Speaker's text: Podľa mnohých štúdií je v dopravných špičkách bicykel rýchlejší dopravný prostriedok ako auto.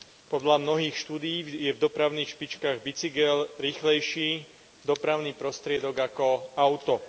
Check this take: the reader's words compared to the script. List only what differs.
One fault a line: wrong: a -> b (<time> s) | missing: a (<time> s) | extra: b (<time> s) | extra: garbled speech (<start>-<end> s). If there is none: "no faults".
no faults